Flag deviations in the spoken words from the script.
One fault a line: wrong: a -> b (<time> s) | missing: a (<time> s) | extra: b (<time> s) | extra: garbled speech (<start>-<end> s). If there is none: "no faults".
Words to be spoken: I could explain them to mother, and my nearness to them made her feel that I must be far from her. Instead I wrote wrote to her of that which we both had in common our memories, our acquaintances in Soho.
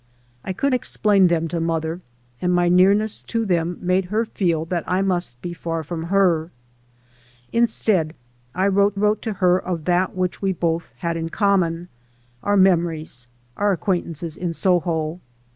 no faults